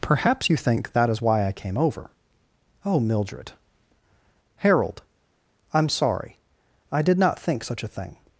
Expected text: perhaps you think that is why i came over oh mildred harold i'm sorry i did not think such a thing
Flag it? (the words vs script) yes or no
no